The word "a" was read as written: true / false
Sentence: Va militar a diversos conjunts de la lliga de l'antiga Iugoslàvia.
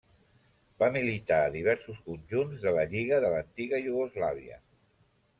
true